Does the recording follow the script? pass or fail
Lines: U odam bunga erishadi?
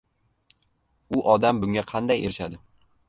fail